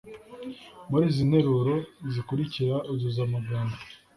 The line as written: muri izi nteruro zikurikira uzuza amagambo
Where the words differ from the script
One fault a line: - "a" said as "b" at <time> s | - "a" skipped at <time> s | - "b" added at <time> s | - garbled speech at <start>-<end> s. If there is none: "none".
none